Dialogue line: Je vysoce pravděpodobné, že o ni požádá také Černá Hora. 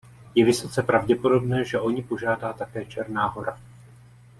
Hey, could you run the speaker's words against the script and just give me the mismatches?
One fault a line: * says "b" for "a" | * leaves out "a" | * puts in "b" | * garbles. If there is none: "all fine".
all fine